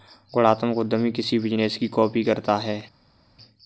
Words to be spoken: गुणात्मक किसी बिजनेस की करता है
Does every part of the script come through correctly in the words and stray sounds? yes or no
no